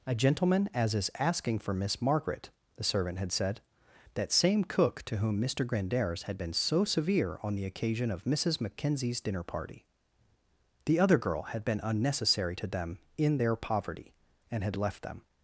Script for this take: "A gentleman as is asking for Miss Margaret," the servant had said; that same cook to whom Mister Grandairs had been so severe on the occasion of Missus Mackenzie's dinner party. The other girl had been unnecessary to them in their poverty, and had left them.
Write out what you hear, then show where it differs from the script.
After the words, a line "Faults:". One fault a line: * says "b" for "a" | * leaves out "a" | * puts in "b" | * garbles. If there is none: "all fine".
"A gentleman as is asking for Miss Margaret," the servant had said; that same cook to whom Mister Grandairs had been so severe on the occasion of Missus Mackenzie's dinner party. The other girl had been unnecessary to them in their poverty, and had left them.
Faults:
all fine